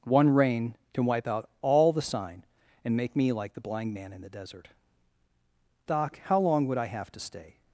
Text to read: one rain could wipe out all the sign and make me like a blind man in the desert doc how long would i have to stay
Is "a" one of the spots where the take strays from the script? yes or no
yes